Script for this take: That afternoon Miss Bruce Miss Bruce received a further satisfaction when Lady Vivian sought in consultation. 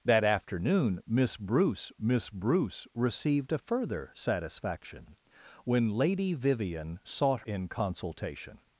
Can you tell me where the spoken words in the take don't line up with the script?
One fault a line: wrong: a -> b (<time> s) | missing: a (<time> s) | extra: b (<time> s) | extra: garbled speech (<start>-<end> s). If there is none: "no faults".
no faults